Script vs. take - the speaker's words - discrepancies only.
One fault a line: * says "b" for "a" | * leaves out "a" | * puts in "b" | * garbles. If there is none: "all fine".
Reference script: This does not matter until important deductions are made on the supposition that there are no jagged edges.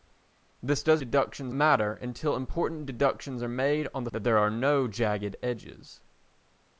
* says "deductions" for "not"
* leaves out "supposition"